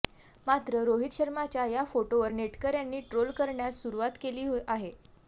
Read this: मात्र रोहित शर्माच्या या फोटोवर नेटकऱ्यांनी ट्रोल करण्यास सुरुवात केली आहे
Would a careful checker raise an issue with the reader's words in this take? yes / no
no